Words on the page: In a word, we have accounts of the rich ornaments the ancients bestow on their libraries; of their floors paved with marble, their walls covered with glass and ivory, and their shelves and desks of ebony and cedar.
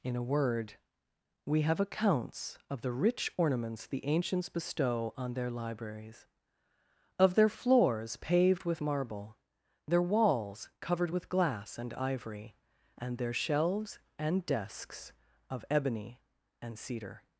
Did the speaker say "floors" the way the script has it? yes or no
yes